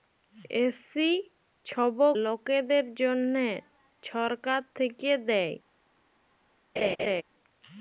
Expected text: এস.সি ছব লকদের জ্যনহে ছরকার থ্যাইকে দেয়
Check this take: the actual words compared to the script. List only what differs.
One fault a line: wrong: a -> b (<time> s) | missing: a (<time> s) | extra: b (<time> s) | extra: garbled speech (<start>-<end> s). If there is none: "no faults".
no faults